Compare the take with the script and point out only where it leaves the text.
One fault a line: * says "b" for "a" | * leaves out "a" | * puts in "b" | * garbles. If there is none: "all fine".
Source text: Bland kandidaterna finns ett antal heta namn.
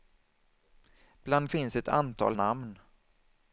* leaves out "kandidaterna"
* leaves out "heta"